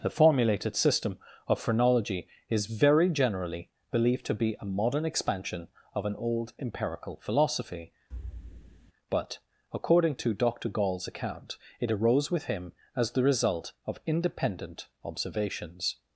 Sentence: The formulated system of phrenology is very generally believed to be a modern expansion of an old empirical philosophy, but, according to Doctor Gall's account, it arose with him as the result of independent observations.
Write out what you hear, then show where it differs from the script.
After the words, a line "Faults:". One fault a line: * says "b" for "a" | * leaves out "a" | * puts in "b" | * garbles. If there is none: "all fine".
The formulated system of phrenology is very generally believed to be a modern expansion of an old empirical philosophy, but, according to Doctor Gall's account, it arose with him as the result of independent observations.
Faults:
all fine